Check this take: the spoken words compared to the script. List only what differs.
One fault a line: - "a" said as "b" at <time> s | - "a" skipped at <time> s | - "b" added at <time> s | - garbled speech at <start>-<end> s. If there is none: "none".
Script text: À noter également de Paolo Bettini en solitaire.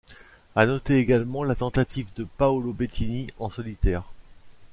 - "la tentative" added at 1.4 s